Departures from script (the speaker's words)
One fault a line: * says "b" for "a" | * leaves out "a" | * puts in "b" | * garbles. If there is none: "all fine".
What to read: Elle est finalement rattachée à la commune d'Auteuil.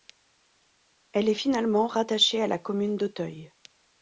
all fine